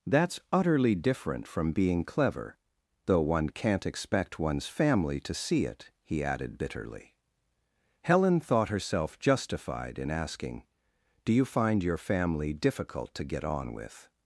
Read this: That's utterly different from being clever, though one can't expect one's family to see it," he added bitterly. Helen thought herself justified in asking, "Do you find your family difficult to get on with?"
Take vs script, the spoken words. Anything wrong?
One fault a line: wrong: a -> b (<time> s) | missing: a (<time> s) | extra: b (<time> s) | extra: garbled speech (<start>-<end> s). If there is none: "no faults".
no faults